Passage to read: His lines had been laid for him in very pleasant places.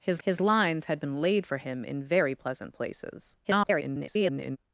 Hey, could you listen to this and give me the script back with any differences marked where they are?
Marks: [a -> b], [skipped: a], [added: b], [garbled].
His [added: his] lines had been laid for him in very pleasant places. [garbled]